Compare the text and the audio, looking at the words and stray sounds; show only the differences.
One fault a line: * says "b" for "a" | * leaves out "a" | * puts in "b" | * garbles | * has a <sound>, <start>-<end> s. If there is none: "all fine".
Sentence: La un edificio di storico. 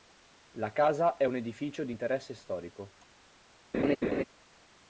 * puts in "casa è"
* puts in "interesse"
* has a laugh, 3.7-4.2 s